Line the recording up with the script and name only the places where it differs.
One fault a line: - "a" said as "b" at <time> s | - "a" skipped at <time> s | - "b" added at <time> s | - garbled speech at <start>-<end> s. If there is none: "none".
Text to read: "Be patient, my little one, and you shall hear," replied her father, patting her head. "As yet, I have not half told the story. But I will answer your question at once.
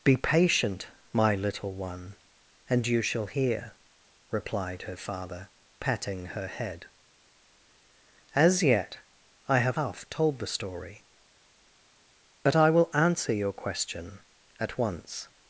- "not" skipped at 9.8 s